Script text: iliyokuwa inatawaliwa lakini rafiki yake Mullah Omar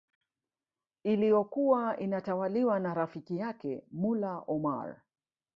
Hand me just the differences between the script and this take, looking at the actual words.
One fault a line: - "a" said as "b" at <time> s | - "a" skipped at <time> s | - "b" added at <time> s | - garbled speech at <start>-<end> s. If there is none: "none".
- "lakini" said as "na" at 2.8 s